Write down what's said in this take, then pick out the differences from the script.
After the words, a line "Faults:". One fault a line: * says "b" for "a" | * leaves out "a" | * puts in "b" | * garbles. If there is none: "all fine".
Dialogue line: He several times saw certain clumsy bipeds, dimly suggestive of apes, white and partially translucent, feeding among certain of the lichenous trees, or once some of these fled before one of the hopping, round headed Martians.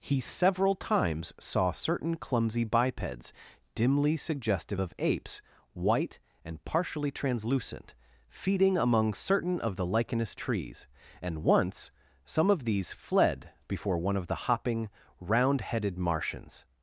He several times saw certain clumsy bipeds, dimly suggestive of apes, white and partially translucent, feeding among certain of the lichenous trees, and once some of these fled before one of the hopping, round headed Martians.
Faults:
* says "and" for "or"